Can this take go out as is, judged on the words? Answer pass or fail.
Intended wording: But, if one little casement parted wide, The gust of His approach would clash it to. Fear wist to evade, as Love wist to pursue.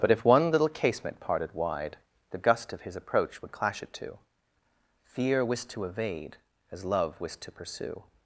pass